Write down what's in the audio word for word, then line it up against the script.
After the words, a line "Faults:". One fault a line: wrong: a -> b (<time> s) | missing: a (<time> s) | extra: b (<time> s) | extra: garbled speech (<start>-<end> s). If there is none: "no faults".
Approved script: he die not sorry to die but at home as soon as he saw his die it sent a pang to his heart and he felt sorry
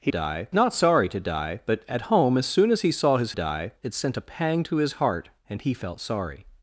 he die not sorry to die but at home as soon as he saw his die it sent a pang to his heart and he felt sorry
Faults:
no faults